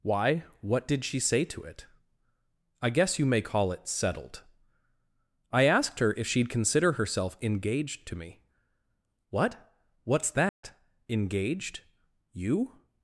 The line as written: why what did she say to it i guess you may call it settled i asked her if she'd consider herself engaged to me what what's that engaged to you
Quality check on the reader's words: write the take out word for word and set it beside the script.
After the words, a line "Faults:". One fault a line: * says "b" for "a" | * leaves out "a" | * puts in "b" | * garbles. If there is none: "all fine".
why what did she say to it i guess you may call it settled i asked her if she'd consider herself engaged to me what what's that engaged you
Faults:
* leaves out "to"